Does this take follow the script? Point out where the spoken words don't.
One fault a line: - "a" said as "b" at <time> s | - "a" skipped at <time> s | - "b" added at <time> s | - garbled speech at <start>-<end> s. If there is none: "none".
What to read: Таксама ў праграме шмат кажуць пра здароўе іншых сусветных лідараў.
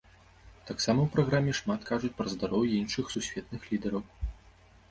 none